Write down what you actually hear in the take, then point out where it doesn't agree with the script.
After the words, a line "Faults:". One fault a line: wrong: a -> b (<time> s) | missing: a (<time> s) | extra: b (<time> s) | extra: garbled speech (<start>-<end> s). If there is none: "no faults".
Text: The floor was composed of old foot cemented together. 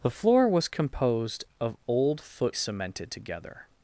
The floor was composed of old foot cemented together.
Faults:
no faults